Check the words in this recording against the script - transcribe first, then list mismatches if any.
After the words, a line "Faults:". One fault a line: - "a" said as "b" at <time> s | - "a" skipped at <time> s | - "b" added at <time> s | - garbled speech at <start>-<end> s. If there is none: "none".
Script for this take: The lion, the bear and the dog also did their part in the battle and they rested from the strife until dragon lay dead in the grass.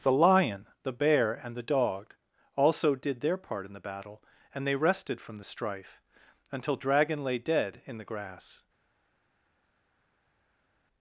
The lion, the bear and the dog also did their part in the battle and they rested from the strife until dragon lay dead in the grass.
Faults:
none